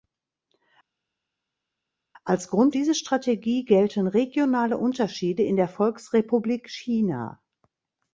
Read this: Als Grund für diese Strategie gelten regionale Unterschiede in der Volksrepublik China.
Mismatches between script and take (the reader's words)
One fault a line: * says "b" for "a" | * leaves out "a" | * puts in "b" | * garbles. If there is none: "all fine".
* leaves out "für"